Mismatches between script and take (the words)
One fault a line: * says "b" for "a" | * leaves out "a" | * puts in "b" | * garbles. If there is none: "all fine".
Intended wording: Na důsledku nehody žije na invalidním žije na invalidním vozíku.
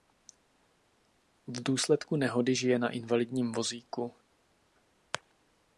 * says "V" for "Na"
* leaves out "žije na invalidním"